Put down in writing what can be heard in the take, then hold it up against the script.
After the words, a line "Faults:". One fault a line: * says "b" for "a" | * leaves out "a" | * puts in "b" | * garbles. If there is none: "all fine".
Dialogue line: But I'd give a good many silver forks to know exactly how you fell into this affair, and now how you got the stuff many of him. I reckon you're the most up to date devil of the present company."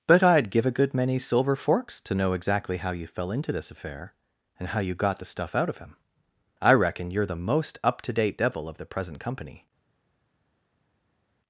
But I'd give a good many silver forks to know exactly how you fell into this affair, and how you got the stuff out of him. I reckon you're the most up to date devil of the present company."
Faults:
* leaves out "now"
* says "out" for "many"